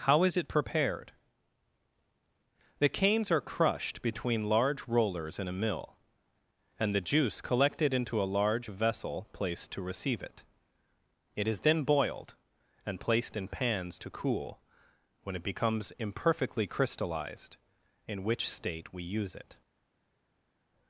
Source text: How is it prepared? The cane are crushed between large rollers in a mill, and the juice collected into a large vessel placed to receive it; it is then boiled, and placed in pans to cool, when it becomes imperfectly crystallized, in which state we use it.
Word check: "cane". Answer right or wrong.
wrong